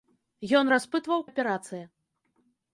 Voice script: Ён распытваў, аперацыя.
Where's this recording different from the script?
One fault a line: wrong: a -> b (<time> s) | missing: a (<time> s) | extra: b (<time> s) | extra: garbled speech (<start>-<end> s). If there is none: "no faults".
no faults